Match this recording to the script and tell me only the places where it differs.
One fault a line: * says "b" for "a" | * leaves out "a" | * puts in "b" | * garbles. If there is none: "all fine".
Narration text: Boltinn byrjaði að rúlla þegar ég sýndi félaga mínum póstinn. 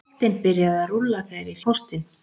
* leaves out "sýndi félaga mínum"